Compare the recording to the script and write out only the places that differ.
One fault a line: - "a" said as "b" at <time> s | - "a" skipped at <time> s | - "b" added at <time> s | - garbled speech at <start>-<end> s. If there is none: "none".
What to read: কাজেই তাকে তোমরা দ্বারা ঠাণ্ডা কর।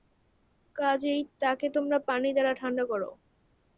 - "পানি" added at 2.1 s